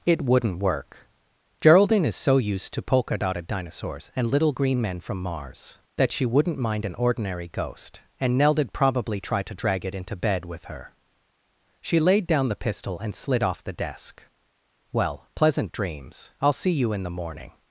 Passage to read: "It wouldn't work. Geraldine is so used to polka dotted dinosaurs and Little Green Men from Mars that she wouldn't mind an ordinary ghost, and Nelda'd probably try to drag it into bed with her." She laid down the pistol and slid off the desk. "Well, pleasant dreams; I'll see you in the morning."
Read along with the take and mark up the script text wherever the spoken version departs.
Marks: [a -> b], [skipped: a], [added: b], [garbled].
"It wouldn't work. Geraldine is so used to polka dotted dinosaurs and Little Green Men from Mars that she wouldn't mind an ordinary ghost, and Nelda'd probably try to drag it into bed with her." She laid down the pistol and slid off the desk. "Well, pleasant dreams; I'll see you in the morning."